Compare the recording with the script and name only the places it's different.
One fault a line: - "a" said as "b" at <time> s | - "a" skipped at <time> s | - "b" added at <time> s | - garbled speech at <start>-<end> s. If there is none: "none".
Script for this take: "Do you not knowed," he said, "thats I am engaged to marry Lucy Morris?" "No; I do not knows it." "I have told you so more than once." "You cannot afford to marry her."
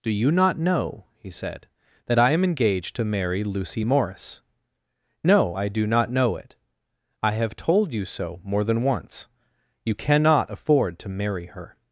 - "knowed" said as "know" at 0.6 s
- "thats" said as "that" at 2.1 s
- "knows" said as "know" at 6.1 s